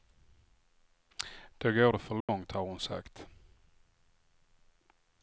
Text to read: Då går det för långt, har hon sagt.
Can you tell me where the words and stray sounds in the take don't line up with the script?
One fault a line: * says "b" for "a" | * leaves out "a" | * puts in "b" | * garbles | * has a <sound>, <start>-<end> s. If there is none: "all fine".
* has a dropout, 2.2-2.3 s